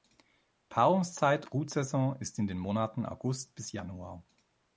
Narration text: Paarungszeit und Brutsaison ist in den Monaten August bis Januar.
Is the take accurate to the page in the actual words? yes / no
no